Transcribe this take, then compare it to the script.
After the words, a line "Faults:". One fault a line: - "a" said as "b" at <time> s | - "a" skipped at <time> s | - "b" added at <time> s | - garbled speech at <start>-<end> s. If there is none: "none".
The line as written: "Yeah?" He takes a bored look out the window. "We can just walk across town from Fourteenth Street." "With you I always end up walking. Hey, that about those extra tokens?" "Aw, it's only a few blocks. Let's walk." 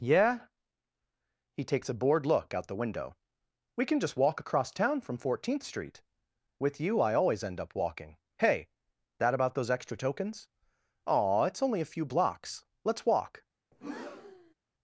"Yeah?" He takes a bored look out the window. "We can just walk across town from Fourteenth Street." "With you I always end up walking. Hey, that about those extra tokens?" "Aw, it's only a few blocks. Let's walk."
Faults:
none